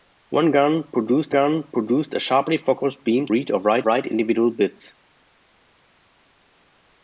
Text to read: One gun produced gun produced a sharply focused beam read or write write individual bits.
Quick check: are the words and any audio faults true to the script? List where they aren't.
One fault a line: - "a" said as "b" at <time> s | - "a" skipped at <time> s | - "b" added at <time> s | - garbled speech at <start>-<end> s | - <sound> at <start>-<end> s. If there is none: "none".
none